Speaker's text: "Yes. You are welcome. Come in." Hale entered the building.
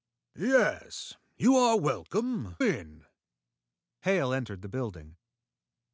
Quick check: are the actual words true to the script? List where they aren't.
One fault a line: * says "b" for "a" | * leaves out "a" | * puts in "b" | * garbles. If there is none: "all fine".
* leaves out "Come"